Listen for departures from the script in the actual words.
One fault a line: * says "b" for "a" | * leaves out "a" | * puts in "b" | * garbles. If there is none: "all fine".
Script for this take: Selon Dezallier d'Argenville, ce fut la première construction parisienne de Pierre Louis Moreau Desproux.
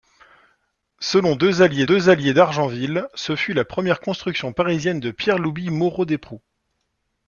* puts in "Dezallier"